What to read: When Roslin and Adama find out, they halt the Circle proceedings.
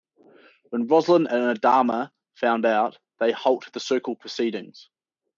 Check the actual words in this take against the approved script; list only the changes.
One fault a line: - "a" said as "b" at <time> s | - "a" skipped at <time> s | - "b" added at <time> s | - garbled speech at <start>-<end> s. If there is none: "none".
none